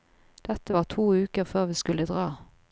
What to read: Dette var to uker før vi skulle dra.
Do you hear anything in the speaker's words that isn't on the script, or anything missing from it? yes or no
no